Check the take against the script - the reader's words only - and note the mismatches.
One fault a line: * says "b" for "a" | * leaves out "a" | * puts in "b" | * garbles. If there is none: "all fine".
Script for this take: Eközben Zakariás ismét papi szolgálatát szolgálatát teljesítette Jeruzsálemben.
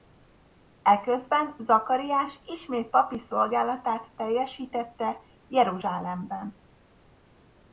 * leaves out "szolgálatát"